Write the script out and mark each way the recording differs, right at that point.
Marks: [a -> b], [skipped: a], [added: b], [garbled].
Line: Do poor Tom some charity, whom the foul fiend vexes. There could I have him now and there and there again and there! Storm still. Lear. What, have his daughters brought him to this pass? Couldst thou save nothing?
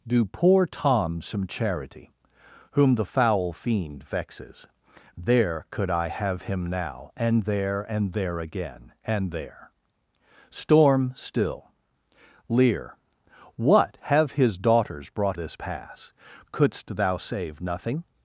Do poor Tom some charity, whom the foul fiend vexes. There could I have him now and there and there again and there! Storm still. Lear. What, have his daughters brought [skipped: him to] this pass? Couldst thou save nothing?